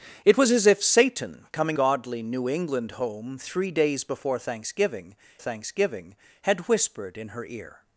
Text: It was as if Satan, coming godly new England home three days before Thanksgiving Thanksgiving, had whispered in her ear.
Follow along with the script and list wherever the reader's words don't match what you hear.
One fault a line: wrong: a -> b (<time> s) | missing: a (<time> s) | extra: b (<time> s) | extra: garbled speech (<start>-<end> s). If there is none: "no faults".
no faults